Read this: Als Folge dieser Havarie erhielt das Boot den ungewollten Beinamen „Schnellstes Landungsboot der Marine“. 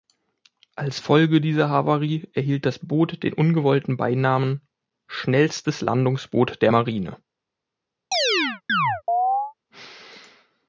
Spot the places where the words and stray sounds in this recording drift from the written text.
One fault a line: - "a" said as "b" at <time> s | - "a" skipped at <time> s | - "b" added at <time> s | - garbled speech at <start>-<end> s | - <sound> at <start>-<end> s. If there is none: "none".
- chirp at 8.1-9.5 s